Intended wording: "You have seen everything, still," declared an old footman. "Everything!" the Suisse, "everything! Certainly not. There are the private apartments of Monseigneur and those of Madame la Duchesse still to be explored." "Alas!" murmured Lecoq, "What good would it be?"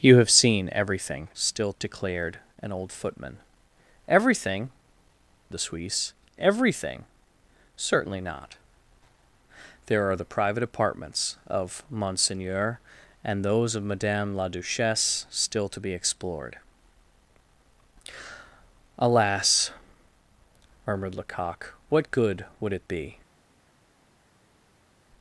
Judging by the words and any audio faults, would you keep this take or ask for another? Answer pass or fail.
pass